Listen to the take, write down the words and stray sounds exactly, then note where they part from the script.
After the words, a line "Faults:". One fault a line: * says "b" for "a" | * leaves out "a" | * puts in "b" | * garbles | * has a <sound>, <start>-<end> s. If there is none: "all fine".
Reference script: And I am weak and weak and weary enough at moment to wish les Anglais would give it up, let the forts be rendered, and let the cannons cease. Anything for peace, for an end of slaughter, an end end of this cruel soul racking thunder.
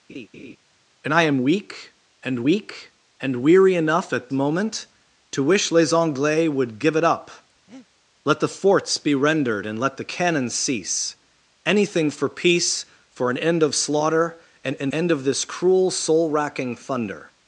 And I am weak and weak and weary enough at moment to wish les Anglais would give it up, let the forts be rendered, and let the cannons cease. Anything for peace, for an end of slaughter, an end end of this cruel soul racking thunder.
Faults:
* has a laugh, 0.1-0.6 s
* has a breath, 7.7-7.9 s